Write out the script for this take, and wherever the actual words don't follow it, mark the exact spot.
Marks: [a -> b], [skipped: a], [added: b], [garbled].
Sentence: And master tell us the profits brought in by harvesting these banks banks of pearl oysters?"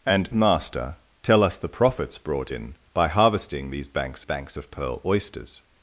And master tell us the profits brought in by harvesting these banks banks of pearl oysters?"